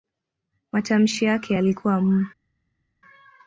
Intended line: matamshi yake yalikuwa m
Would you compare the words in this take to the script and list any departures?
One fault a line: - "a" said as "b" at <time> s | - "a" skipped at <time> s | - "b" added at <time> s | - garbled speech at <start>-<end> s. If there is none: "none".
none